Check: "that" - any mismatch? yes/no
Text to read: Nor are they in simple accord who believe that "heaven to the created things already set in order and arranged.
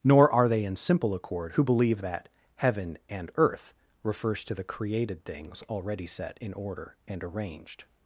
no